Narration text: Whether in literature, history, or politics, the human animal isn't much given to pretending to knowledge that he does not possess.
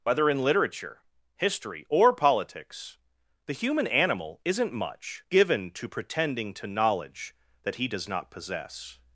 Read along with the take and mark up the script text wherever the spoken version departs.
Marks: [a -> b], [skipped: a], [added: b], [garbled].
Whether in literature, history, or politics, the human animal isn't much given to pretending to knowledge that he does not possess.